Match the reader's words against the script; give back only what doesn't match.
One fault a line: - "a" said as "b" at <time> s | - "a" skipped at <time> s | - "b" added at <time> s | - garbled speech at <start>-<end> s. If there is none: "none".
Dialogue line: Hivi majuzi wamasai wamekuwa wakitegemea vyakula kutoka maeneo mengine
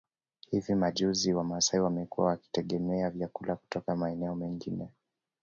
none